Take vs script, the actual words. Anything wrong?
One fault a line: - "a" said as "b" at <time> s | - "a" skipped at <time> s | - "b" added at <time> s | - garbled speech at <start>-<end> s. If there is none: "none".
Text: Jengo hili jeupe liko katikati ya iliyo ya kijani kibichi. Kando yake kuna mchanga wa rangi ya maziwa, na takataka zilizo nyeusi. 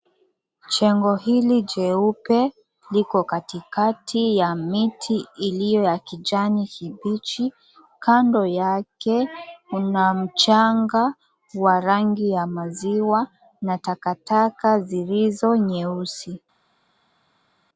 - "miti" added at 4.6 s